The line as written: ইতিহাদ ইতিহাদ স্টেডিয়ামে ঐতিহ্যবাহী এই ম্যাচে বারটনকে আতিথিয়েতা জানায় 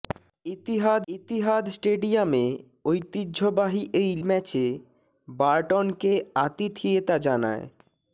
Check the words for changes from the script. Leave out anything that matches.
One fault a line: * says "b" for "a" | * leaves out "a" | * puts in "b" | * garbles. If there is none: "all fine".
all fine